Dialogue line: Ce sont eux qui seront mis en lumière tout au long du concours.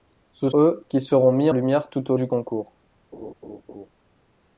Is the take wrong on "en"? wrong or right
wrong